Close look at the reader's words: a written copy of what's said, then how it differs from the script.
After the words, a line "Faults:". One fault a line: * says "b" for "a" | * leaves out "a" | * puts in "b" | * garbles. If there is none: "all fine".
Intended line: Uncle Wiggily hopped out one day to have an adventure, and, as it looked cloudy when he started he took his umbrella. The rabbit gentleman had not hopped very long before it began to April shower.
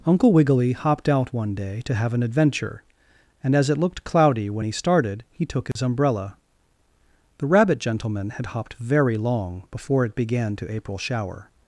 Uncle Wiggily hopped out one day to have an adventure, and, as it looked cloudy when he started he took his umbrella. The rabbit gentleman had hopped very long before it began to April shower.
Faults:
* leaves out "not"